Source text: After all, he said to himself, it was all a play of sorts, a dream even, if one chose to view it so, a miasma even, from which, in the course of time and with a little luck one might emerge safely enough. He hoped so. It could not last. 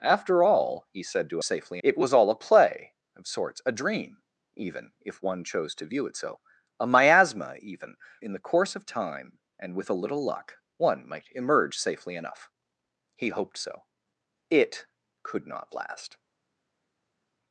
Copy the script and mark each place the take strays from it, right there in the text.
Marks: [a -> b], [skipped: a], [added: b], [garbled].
After all, he said to [himself, -> safely] it was all a play of sorts, a dream even, if one chose to view it so, a miasma even, [skipped: from which,] in the course of time and with a little luck one might emerge safely enough. He hoped so. It could not last.